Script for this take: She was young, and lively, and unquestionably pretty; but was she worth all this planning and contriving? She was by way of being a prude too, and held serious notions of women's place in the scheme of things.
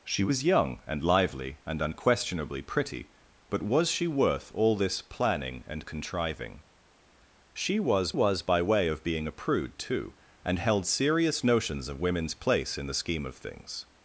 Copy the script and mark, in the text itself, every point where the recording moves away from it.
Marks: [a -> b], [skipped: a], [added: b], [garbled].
She was young, and lively, and unquestionably pretty; but was she worth all this planning and contriving? She was [added: was] by way of being a prude too, and held serious notions of women's place in the scheme of things.